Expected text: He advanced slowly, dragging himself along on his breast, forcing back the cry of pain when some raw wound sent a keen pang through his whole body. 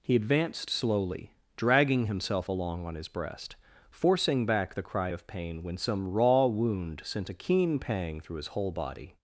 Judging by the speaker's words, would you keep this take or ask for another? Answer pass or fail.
pass